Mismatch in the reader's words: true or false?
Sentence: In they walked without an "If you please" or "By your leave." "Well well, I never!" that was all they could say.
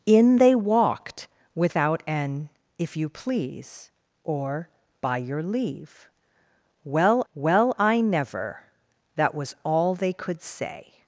false